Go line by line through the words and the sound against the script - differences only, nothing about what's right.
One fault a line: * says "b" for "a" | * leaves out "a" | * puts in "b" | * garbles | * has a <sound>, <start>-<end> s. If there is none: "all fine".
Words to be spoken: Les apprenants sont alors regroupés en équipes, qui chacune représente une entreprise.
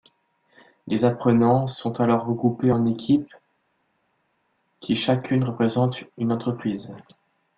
all fine